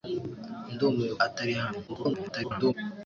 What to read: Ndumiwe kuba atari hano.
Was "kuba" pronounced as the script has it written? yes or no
no